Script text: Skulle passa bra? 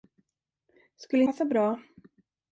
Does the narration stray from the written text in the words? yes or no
no